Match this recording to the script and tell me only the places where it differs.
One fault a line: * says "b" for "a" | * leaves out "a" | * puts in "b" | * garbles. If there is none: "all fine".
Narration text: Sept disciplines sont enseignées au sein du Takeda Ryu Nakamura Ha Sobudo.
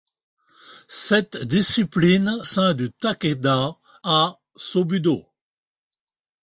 * leaves out "sont enseignées au"
* leaves out "Ryu Nakamura"